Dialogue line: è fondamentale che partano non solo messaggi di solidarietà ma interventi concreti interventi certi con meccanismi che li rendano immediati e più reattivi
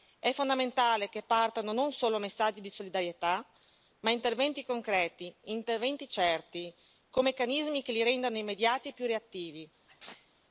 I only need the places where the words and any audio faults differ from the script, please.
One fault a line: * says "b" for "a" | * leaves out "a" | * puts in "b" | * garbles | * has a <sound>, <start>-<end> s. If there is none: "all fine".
* has a sneeze, 9.9-10.3 s